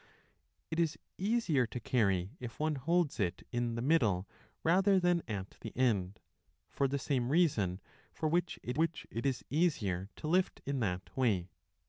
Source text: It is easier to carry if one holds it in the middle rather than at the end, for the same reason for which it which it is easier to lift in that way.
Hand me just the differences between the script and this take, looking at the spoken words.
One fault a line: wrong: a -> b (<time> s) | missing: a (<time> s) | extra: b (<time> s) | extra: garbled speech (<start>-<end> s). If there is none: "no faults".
no faults